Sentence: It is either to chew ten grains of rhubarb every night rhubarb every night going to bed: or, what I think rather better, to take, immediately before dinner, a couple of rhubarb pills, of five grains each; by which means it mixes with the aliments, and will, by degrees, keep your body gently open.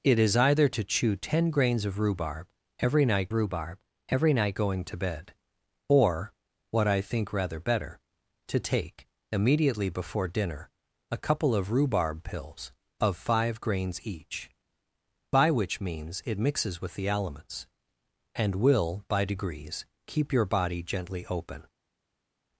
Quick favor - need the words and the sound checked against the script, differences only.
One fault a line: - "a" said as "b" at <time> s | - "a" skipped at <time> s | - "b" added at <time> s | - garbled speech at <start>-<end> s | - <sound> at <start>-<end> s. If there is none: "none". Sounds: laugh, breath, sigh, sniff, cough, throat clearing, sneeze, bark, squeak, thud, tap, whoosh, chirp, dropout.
none